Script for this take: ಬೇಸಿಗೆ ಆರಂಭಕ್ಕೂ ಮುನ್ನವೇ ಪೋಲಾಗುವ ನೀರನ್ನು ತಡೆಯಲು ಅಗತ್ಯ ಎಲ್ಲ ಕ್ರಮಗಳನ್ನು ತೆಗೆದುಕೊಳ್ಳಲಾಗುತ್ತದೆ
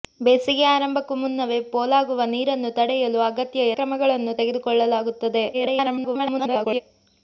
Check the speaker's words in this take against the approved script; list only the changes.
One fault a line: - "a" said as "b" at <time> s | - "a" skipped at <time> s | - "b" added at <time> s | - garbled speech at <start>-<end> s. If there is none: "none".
- "ಎಲ್ಲ" skipped at 3.7 s
- garbled speech at 5.5-6.8 s